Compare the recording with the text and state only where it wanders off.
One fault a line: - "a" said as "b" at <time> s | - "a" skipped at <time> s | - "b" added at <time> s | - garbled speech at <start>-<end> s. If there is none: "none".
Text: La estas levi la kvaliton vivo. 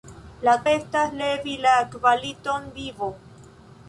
none